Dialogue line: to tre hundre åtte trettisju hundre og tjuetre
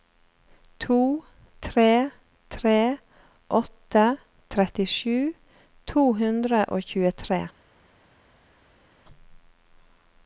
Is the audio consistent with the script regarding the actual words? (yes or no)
no